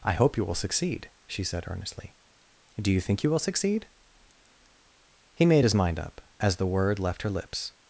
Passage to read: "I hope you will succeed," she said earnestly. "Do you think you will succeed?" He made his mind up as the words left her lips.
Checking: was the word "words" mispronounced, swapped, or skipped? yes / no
yes